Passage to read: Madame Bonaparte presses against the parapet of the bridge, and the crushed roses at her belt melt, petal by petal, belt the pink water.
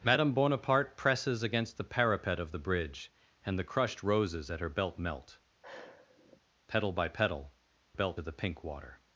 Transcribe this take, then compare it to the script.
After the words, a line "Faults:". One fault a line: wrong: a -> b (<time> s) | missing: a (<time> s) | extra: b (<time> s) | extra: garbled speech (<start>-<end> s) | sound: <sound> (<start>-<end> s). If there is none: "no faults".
Madame Bonaparte presses against the parapet of the bridge, and the crushed roses at her belt melt, petal by petal, belt the pink water.
Faults:
sound: sigh (5.6-6.4 s)